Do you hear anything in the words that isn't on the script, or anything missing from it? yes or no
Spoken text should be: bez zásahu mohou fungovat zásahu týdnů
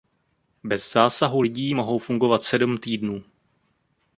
yes